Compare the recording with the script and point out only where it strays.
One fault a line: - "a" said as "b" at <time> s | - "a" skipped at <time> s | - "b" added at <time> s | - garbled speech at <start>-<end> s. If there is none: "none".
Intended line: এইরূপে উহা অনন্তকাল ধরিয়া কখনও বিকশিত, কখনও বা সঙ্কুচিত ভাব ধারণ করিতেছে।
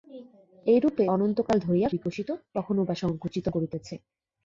- "উহা" skipped at 1.1 s
- "কখনও" skipped at 1.9 s
- "ভাব ধারণ" skipped at 3.5 s